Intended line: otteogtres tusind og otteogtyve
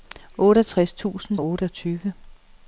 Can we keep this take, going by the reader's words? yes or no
yes